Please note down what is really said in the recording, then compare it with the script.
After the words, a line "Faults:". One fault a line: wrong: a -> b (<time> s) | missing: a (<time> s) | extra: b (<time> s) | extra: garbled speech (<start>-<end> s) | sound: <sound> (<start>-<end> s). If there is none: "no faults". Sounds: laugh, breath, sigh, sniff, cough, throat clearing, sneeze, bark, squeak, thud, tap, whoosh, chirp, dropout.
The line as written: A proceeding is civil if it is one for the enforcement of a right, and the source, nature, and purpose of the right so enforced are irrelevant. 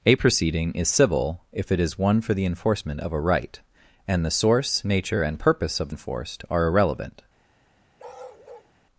A proceeding is civil if it is one for the enforcement of a right, and the source, nature, and purpose of enforced are irrelevant.
Faults:
missing: the right so (5.9 s)
sound: bark (8.0-8.7 s)